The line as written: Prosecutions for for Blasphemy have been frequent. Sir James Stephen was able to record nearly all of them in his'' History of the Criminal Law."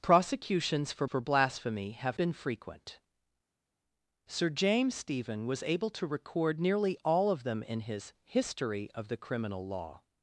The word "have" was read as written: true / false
true